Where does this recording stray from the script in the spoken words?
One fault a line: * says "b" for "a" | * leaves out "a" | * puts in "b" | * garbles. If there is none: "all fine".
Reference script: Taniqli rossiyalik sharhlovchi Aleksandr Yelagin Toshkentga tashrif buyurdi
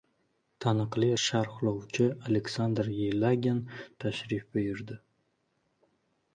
* leaves out "rossiyalik"
* leaves out "Toshkentga"